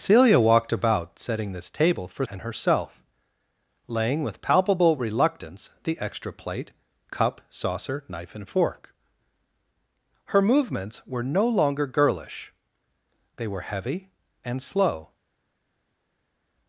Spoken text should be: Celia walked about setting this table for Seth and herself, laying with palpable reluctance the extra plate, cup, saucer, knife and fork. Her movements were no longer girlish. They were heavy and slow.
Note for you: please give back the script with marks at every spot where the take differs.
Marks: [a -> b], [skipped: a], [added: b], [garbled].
Celia walked about setting this table for [skipped: Seth] and herself, laying with palpable reluctance the extra plate, cup, saucer, knife and fork. Her movements were no longer girlish. They were heavy and slow.